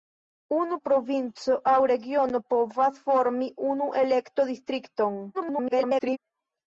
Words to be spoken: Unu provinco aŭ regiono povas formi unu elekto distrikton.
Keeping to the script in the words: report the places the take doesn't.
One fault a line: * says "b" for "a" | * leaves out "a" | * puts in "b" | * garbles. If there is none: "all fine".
* garbles